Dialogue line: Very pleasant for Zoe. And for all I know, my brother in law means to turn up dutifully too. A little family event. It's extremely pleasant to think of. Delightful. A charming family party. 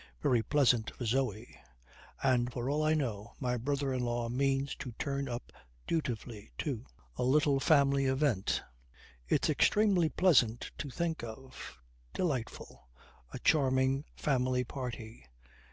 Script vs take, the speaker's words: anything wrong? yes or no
no